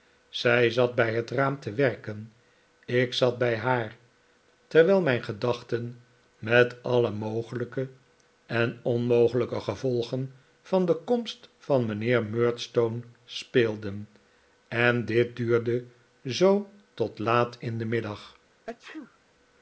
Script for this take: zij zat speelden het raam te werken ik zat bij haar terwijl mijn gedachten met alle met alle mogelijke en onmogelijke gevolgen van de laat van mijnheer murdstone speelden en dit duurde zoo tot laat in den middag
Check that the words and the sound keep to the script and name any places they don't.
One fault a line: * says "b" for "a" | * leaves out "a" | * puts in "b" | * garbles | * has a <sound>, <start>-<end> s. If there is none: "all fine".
* says "bij" for "speelden"
* leaves out "met alle"
* says "komst" for "laat"
* has a sneeze, 18.7-19.2 s